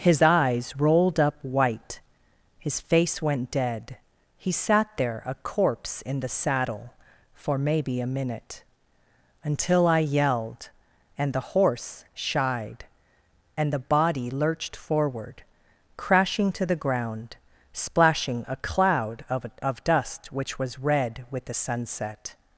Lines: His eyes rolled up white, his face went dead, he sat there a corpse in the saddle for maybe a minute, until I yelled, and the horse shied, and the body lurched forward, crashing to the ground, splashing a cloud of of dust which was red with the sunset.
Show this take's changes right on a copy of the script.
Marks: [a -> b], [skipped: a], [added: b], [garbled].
His eyes rolled up white, his face went dead, he sat there a corpse in the saddle for maybe a minute, until I yelled, and the horse shied, and the body lurched forward, crashing to the ground, splashing a cloud of of dust which was red with the sunset.